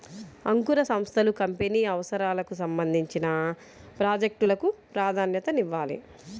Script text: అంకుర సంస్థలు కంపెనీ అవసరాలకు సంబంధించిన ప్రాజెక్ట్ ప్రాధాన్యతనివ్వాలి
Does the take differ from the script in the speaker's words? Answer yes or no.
yes